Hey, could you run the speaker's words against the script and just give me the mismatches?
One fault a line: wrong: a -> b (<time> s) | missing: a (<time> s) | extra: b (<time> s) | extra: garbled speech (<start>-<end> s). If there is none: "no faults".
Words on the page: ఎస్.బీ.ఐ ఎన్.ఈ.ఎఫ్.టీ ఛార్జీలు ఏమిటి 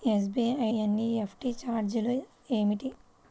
no faults